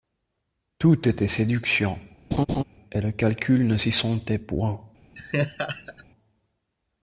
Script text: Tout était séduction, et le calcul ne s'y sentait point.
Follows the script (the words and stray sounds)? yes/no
no